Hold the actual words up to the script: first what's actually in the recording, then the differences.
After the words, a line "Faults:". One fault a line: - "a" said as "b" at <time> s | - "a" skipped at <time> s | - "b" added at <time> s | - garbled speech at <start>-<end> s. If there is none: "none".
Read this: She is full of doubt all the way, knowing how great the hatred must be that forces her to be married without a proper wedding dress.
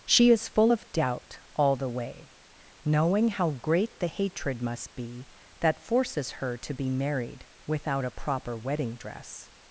She is full of doubt all the way, knowing how great the hatred must be that forces her to be married without a proper wedding dress.
Faults:
none